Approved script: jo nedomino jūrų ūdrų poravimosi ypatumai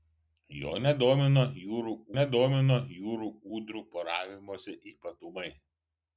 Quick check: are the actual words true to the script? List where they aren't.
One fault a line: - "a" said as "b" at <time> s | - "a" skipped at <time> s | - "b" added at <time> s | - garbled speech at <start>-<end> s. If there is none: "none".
- "nedomino jūrų" added at 2.2 s